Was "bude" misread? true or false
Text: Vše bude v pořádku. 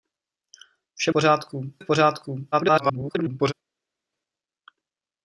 true